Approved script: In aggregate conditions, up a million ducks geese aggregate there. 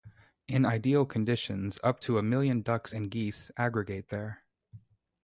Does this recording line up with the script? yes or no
no